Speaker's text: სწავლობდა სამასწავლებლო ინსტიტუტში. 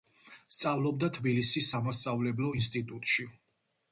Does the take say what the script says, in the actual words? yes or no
no